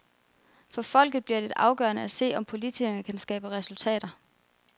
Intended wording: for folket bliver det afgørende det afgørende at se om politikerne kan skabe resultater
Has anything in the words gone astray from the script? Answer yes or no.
yes